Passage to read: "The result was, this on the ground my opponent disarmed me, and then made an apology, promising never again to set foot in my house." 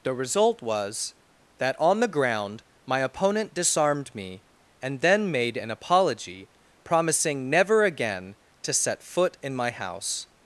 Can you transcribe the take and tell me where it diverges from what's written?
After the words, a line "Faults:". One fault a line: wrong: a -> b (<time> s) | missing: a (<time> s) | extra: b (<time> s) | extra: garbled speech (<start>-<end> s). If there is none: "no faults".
"The result was, that on the ground my opponent disarmed me, and then made an apology, promising never again to set foot in my house."
Faults:
wrong: this -> that (1.6 s)